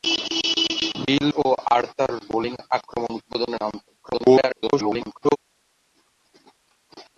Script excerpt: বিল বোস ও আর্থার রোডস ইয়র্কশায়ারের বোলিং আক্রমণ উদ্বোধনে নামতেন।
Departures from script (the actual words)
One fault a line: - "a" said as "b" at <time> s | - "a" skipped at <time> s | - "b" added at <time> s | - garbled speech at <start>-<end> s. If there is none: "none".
- "বোস" skipped at 1.3 s
- "রোডস ইয়র্কশায়ারের" skipped at 2.1 s
- garbled speech at 4.0-5.4 s